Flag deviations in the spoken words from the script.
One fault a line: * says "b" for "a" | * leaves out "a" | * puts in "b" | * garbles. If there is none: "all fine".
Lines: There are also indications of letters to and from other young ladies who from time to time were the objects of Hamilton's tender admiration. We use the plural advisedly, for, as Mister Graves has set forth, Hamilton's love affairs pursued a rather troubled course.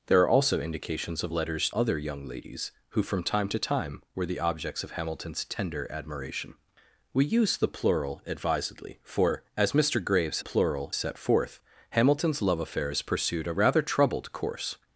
* leaves out "to and from"
* says "plural" for "has"